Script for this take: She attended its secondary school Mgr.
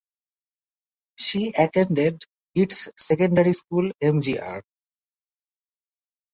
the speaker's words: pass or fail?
pass